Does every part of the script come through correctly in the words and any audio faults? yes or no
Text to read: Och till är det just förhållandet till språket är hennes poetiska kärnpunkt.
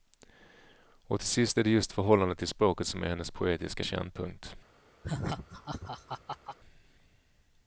no